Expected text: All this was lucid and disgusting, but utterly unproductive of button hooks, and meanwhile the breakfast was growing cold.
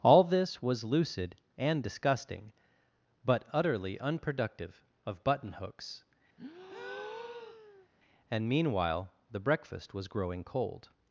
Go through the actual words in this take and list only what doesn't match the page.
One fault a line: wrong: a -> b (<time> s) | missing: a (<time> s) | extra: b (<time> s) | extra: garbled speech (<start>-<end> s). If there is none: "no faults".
no faults